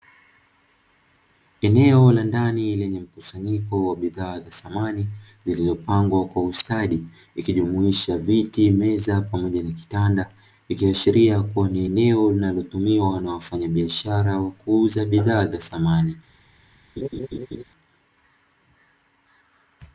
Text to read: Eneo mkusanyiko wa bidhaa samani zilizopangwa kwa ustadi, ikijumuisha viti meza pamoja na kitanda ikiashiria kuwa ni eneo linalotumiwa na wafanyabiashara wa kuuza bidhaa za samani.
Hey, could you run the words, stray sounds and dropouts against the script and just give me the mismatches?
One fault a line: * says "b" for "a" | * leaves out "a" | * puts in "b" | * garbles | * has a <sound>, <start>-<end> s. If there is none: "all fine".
* puts in "la ndani lenye"
* puts in "za"
* has a laugh, 17.0-17.6 s